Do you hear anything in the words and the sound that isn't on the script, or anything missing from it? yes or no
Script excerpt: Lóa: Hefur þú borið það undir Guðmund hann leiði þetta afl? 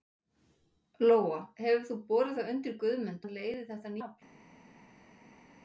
no